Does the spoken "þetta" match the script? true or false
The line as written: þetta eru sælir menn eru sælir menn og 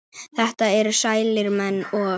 true